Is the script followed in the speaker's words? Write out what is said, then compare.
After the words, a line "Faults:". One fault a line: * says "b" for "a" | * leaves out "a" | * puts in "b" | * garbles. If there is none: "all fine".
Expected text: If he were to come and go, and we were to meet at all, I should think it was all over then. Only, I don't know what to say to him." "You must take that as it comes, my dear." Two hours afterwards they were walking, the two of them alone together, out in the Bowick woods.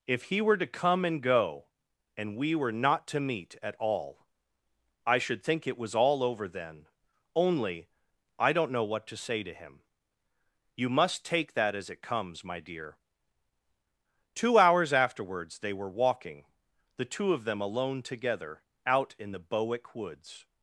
If he were to come and go, and we were not to meet at all, I should think it was all over then. Only, I don't know what to say to him." "You must take that as it comes, my dear." Two hours afterwards they were walking, the two of them alone together, out in the Bowick woods.
Faults:
* puts in "not"